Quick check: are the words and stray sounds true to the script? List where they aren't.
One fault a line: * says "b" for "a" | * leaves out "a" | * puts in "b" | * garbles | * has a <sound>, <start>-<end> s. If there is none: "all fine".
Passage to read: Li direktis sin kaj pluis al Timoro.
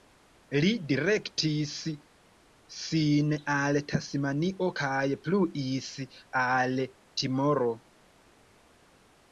* puts in "al Tasmanio"